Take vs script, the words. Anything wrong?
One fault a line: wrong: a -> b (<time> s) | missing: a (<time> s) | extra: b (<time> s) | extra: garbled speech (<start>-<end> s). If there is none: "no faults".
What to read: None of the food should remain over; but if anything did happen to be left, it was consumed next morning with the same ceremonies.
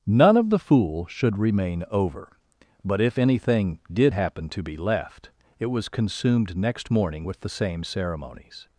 wrong: food -> fool (0.6 s)